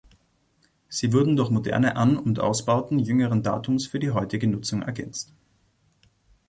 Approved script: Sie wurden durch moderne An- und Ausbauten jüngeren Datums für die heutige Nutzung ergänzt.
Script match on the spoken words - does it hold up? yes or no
yes